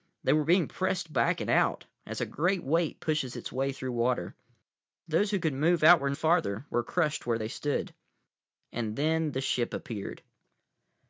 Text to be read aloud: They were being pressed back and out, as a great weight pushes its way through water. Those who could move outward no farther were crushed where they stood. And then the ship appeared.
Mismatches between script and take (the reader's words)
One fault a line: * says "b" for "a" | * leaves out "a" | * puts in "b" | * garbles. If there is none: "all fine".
* leaves out "no"